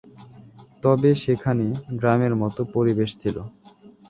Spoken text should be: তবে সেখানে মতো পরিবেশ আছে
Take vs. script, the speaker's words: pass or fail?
fail